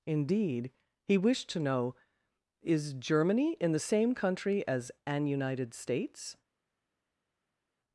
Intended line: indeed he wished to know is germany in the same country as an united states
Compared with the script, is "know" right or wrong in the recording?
right